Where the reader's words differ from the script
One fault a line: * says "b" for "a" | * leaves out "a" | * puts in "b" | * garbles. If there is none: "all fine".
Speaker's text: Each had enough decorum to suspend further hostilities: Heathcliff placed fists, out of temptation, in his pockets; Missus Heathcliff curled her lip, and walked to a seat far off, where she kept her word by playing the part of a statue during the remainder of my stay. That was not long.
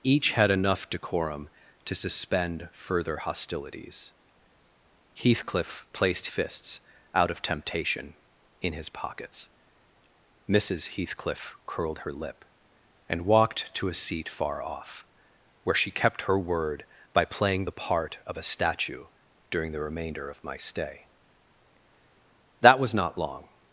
all fine